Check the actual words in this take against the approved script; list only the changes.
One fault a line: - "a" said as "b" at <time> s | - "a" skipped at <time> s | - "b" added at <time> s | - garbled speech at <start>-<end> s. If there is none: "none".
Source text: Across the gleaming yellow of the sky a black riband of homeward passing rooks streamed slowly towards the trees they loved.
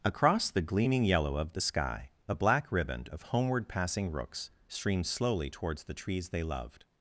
none